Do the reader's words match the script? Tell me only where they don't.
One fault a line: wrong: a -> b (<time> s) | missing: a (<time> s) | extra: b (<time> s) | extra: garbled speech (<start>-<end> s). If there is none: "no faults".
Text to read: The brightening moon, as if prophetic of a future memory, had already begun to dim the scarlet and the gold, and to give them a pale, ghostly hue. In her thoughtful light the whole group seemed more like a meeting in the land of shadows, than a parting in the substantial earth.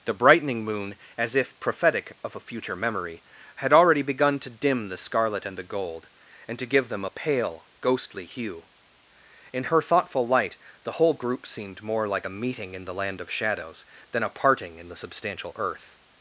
no faults